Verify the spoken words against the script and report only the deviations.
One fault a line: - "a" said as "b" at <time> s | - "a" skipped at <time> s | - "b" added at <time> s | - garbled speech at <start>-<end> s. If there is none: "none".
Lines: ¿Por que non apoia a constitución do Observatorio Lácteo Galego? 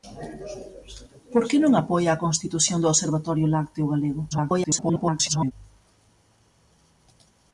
- garbled speech at 4.3-5.5 s